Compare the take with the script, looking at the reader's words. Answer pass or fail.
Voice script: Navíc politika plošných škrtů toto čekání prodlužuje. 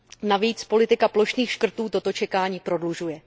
pass